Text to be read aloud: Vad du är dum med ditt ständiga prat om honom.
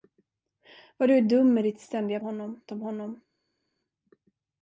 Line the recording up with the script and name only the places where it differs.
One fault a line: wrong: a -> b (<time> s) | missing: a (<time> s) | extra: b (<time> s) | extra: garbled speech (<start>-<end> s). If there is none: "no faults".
wrong: prat -> honom (2.2 s)